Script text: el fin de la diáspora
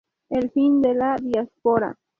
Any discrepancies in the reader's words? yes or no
no